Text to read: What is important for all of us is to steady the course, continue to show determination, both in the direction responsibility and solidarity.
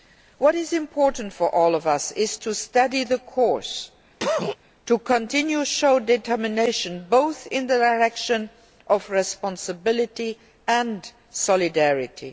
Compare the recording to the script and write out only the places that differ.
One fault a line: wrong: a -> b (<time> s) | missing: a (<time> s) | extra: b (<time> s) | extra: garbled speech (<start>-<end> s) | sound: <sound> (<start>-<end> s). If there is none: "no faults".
sound: cough (4.2-4.6 s)
extra: to (4.9 s)
extra: of (8.9 s)